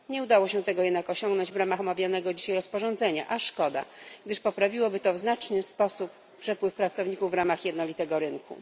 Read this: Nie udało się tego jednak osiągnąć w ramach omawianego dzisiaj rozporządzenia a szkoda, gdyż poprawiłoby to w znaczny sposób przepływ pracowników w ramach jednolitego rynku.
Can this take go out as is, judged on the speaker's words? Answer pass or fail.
pass